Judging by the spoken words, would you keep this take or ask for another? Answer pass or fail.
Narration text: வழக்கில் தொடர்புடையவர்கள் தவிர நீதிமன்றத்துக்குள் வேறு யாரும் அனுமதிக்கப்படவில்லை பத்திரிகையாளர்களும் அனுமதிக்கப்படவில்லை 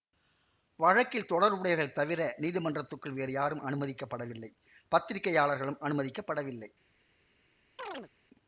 pass